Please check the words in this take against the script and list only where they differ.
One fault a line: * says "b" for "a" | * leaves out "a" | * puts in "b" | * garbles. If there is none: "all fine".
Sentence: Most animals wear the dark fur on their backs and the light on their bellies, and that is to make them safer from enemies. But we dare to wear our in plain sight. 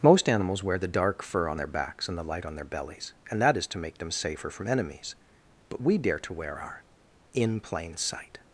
all fine